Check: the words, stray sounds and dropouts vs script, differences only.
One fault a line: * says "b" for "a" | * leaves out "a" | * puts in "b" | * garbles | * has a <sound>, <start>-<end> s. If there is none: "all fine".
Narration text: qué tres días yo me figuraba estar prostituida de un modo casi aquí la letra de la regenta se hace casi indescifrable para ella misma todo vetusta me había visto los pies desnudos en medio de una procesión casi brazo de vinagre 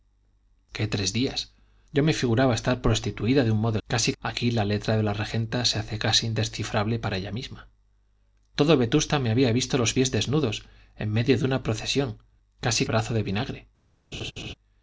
* has a laugh, 14.1-14.5 s